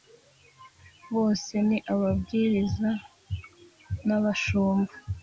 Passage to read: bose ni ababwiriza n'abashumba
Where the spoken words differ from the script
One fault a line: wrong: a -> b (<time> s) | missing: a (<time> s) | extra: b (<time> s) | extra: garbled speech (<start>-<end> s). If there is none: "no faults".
no faults